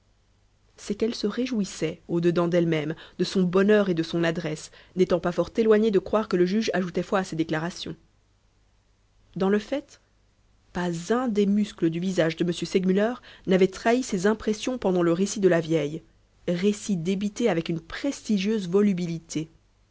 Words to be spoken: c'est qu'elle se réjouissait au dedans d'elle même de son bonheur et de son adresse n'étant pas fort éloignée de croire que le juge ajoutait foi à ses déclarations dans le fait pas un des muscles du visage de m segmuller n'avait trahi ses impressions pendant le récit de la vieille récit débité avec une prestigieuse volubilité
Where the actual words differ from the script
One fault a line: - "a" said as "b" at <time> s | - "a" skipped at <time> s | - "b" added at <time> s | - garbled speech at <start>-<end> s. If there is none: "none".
none